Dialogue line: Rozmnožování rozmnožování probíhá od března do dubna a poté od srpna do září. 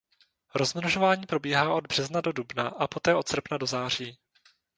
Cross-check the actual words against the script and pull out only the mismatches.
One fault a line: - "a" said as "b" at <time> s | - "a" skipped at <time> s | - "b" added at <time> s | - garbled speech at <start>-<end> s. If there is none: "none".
- "rozmnožování" skipped at 1.2 s